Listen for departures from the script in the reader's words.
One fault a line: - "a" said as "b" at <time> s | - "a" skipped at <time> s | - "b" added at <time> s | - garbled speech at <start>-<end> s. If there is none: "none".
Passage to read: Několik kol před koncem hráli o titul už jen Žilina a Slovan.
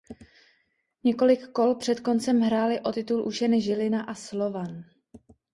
none